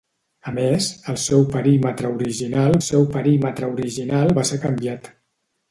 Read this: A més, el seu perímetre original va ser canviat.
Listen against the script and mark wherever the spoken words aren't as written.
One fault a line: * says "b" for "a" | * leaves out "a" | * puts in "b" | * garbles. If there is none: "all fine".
* puts in "seu perímetre original"